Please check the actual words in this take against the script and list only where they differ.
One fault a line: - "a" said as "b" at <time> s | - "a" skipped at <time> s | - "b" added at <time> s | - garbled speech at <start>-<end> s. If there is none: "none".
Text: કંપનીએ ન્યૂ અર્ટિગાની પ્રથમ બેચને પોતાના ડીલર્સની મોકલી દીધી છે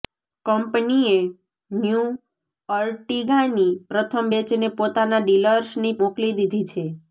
none